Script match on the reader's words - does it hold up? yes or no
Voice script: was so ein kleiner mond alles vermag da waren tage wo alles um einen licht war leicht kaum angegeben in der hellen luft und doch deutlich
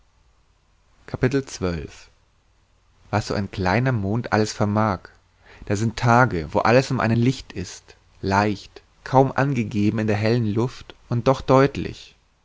no